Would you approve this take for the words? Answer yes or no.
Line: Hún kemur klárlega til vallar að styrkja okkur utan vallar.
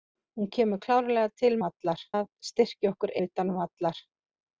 yes